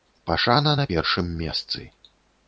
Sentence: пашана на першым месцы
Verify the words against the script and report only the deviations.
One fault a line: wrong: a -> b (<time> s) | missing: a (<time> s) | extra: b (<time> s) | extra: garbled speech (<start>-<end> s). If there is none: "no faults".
no faults